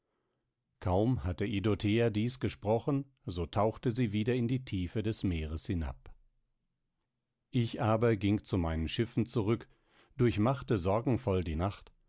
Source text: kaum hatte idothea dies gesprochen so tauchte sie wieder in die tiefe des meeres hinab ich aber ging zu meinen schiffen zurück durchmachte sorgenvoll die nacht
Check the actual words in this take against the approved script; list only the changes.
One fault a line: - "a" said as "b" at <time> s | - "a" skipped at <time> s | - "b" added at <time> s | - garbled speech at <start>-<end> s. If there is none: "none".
none